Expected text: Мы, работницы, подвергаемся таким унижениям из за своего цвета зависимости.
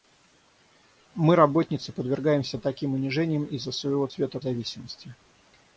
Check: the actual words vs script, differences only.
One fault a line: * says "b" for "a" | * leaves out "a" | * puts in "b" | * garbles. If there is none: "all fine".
all fine